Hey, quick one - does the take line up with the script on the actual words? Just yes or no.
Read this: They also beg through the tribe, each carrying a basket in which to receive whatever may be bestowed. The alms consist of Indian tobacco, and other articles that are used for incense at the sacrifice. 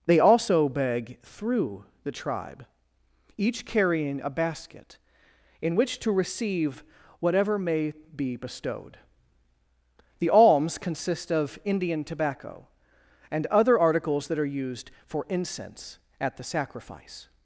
yes